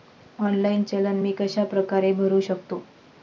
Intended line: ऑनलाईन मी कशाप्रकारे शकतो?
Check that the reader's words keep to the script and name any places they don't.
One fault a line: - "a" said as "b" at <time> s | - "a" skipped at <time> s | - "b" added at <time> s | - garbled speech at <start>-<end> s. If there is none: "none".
- "चलन" added at 0.8 s
- "भरु" added at 2.2 s